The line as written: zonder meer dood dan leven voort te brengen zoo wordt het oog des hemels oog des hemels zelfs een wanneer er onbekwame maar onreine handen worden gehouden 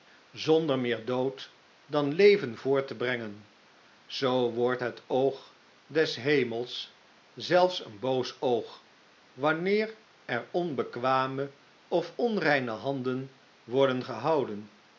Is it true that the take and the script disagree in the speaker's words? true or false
true